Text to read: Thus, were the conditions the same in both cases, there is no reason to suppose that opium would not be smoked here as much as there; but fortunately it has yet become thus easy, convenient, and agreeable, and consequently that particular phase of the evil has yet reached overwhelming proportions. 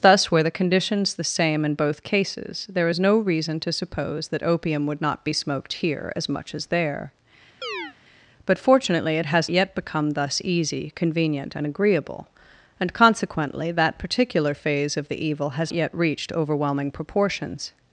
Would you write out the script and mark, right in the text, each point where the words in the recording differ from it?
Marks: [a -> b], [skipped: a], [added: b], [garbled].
Thus, were the conditions the same in both cases, there is no reason to suppose that opium would not be smoked here as much as there; but fortunately it has yet become thus easy, convenient, and agreeable, and consequently that particular phase of the evil has yet reached overwhelming proportions.